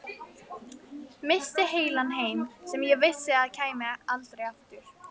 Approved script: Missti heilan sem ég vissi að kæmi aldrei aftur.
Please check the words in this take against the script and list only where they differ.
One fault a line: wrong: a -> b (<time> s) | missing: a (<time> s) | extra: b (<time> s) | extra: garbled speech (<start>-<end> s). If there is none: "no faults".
extra: heim (2.2 s)